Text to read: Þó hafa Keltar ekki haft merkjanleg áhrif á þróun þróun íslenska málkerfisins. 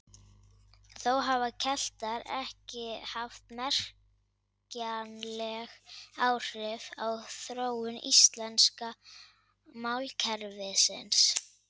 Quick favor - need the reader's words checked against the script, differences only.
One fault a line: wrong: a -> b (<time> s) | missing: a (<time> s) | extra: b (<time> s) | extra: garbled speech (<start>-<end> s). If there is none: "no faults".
missing: þróun (8.0 s)